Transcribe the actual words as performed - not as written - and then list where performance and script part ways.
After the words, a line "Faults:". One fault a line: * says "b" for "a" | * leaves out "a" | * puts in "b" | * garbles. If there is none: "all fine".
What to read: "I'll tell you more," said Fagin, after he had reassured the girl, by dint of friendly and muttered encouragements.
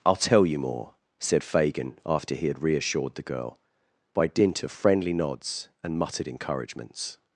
"I'll tell you more," said Fagin, after he had reassured the girl, by dint of friendly nods and muttered encouragements.
Faults:
* puts in "nods"